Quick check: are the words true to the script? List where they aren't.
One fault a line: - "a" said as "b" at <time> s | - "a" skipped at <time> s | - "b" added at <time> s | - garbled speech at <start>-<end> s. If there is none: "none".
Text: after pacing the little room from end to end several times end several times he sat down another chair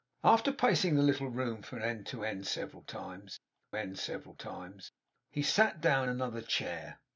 none